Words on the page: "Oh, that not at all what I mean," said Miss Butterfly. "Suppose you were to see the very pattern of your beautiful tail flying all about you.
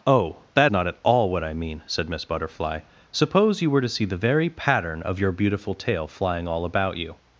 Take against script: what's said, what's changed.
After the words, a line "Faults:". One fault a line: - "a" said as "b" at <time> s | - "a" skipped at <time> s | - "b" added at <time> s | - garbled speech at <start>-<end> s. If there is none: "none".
"Oh, that not at all what I mean," said Miss Butterfly. "Suppose you were to see the very pattern of your beautiful tail flying all about you.
Faults:
none